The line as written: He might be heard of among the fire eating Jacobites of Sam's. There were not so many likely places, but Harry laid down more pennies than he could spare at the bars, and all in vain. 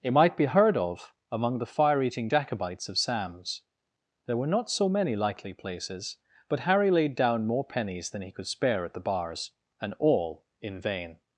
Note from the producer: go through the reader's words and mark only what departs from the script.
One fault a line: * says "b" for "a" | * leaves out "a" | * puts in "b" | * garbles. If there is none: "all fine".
* says "It" for "He"